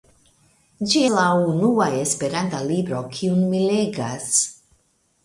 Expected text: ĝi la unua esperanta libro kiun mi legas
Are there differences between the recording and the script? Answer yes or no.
no